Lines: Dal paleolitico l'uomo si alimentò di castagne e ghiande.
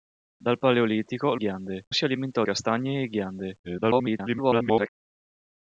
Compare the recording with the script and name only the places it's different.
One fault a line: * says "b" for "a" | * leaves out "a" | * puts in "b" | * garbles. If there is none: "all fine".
* says "ghiande" for "l'uomo"
* leaves out "di"
* garbles